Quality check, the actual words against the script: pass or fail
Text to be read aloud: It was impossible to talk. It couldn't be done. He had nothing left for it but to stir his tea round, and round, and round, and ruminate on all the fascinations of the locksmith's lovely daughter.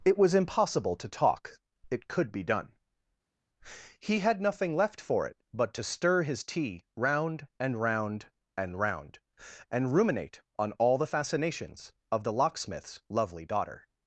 fail